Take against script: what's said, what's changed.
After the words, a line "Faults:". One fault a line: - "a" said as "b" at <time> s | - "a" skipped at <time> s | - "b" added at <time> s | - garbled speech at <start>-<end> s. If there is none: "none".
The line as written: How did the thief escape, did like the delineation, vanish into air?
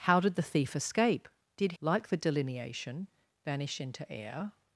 How did the thief escape, did like the delineation, vanish into air?
Faults:
none